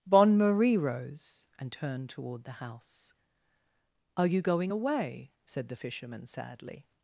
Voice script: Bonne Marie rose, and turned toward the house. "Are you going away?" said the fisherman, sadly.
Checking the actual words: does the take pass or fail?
pass